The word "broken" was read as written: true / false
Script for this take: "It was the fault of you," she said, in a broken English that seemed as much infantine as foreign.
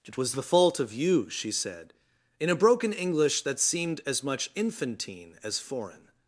true